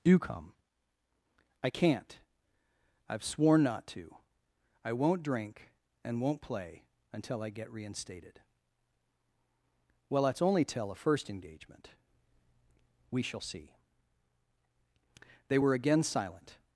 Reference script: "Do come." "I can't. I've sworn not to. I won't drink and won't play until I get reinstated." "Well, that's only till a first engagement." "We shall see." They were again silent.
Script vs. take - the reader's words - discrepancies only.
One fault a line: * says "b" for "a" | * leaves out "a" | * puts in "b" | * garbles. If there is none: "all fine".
all fine